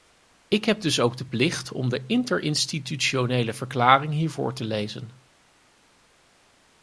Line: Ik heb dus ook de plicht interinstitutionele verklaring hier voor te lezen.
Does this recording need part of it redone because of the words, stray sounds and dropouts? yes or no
yes